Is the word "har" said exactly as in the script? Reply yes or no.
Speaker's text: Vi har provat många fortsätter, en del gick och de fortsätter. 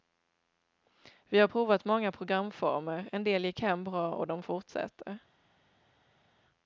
yes